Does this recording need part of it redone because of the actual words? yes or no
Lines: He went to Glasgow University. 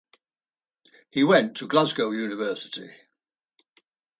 no